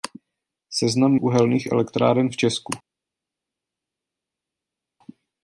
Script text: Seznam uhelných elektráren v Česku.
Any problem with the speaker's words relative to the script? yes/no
no